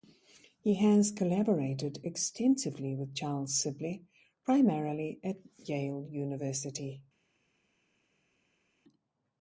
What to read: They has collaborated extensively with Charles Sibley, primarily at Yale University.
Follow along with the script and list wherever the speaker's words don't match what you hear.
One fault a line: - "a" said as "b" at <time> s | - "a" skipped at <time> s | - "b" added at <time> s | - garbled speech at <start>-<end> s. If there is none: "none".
- "They" said as "He" at 0.6 s